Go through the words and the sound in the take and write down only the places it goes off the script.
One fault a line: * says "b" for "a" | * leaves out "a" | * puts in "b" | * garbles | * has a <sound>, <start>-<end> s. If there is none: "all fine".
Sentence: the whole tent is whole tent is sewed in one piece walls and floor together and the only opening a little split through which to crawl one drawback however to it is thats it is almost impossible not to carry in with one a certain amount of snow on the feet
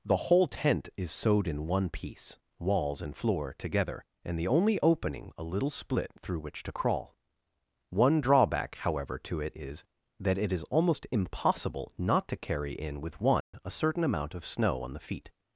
* leaves out "whole tent is"
* says "that" for "thats"
* has a dropout, 13.4-13.5 s